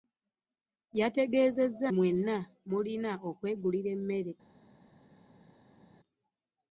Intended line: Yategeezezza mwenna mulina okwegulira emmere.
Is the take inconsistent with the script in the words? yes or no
no